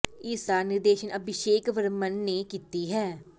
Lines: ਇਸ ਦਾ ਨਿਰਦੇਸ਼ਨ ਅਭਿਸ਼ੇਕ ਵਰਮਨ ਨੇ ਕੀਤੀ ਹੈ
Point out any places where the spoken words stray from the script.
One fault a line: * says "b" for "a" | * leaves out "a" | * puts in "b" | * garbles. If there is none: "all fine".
all fine